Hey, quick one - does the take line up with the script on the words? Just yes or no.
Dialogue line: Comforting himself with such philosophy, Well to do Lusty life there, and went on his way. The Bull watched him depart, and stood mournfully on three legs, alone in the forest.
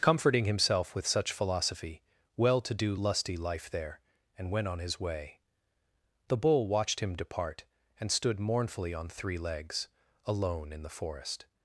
yes